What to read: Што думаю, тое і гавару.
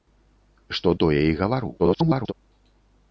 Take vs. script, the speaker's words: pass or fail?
fail